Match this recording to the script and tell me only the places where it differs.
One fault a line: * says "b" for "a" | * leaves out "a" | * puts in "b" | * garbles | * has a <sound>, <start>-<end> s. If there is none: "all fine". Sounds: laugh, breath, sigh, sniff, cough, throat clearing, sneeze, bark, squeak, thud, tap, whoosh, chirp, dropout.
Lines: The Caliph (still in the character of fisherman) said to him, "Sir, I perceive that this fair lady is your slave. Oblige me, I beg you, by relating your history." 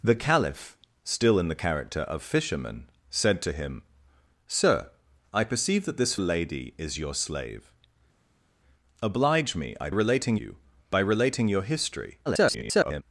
* leaves out "fair"
* says "relating" for "beg"
* garbles